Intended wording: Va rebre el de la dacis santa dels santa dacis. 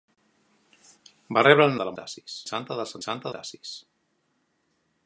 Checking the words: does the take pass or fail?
pass